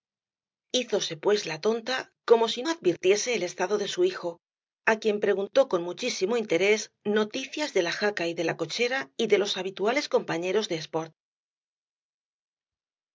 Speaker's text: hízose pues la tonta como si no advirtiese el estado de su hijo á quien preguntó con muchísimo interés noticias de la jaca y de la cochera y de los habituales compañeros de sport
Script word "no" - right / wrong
wrong